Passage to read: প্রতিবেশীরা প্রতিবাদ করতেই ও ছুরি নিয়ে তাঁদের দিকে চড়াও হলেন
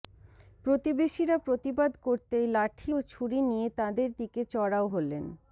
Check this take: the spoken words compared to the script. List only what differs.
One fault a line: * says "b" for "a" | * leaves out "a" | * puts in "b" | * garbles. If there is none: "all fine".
* puts in "লাঠি"